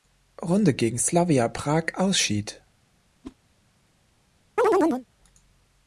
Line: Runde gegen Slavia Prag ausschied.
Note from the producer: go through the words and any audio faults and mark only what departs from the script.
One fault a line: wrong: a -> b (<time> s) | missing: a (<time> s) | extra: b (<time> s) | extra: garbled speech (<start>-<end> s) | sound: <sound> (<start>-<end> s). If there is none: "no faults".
sound: whoosh (3.2-3.4 s)
sound: chirp (4.6-5.1 s)